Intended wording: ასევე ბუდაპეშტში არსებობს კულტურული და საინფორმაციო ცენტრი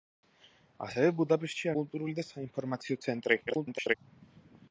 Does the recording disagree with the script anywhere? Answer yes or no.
yes